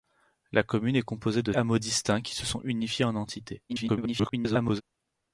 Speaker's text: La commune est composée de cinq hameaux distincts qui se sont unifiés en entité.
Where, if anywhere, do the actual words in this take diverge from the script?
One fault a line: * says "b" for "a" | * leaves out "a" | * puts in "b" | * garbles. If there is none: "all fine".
* leaves out "cinq"
* garbles